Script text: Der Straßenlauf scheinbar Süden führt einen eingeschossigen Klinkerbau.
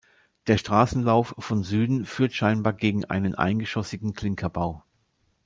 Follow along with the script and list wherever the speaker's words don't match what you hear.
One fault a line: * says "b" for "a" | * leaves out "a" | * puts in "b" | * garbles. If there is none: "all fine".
* says "von" for "scheinbar"
* puts in "scheinbar gegen"